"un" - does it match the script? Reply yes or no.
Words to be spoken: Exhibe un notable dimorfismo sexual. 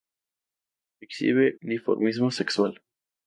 no